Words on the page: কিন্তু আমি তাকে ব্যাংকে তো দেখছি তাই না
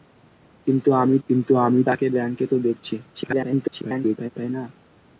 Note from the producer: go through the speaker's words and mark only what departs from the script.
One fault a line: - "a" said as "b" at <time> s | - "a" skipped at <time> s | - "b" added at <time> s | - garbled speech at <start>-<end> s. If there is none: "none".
- "কিন্তু আমি" added at 1.3 s
- garbled speech at 3.1-4.3 s